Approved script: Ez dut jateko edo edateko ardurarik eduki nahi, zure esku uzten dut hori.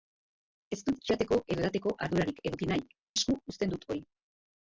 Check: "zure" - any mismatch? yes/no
yes